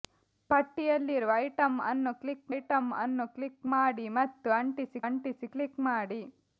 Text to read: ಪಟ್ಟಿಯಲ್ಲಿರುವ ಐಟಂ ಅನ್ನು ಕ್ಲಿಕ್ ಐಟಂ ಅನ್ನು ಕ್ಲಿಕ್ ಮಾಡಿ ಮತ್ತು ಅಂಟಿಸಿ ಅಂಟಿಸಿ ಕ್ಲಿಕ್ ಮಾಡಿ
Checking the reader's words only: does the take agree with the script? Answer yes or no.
yes